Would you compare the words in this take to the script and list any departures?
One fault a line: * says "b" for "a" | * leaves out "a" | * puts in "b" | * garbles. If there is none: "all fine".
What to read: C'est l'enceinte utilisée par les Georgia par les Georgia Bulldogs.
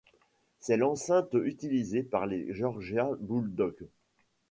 * leaves out "par les Georgia"